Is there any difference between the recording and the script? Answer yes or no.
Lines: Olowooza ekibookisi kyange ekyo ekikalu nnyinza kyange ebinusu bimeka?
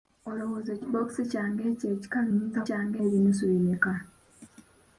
no